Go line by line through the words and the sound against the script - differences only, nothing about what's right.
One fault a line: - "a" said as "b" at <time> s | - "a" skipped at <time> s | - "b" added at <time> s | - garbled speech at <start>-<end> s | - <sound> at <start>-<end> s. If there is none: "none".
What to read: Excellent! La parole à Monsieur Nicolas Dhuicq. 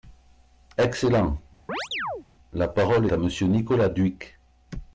- chirp at 1.7-2.3 s